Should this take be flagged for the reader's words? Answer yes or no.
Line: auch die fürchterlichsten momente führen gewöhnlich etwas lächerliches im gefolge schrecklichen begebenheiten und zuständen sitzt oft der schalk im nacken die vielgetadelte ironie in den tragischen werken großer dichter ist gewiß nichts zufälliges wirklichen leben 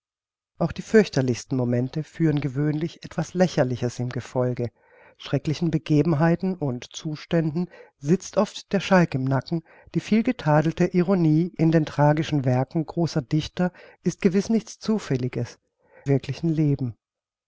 no